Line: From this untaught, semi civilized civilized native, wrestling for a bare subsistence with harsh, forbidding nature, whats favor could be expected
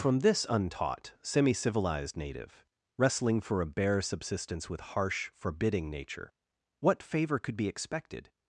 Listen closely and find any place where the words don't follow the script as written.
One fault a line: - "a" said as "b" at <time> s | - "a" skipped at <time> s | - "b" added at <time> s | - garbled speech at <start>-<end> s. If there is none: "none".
- "civilized" skipped at 2.2 s
- "whats" said as "what" at 6.8 s